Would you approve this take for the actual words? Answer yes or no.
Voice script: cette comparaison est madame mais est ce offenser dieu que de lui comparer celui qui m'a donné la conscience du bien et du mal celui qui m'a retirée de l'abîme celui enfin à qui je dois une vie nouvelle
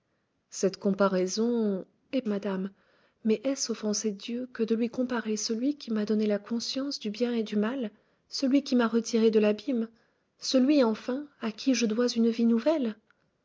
yes